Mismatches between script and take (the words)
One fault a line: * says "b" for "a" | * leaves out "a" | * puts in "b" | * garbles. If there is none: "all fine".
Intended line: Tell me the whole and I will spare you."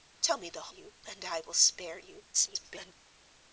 * says "you" for "whole"
* garbles